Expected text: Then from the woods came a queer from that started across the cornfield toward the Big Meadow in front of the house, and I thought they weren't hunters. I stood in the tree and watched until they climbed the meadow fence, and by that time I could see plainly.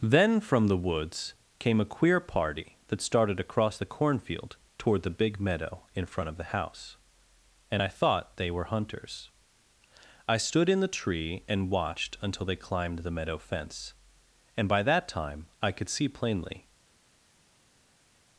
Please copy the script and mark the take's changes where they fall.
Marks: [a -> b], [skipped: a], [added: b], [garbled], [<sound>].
Then from the woods came a queer [from -> party] that started across the cornfield toward the Big Meadow in front of the house, and I thought they [weren't -> were] hunters. I stood in the tree and watched until they climbed the meadow fence, and by that time I could see plainly.